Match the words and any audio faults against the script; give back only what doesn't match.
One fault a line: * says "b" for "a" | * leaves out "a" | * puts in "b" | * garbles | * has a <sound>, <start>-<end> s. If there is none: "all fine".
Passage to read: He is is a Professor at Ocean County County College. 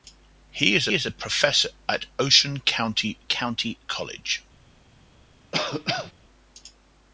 * has a cough, 5.5-6.1 s